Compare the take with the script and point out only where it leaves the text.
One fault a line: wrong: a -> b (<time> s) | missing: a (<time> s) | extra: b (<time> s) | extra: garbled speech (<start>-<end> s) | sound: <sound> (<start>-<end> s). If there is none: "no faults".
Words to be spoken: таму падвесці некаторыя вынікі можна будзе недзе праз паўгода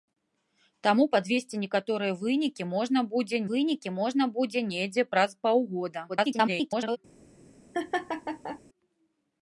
extra: вынікі можна будзе (3.5 s)
extra: garbled speech (6.1-7.0 s)
sound: laugh (7.7-8.6 s)